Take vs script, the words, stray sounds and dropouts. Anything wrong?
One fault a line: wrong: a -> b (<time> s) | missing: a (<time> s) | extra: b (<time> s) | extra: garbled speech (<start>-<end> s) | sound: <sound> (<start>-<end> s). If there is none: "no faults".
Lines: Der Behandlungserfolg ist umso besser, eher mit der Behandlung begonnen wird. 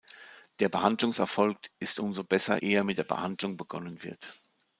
no faults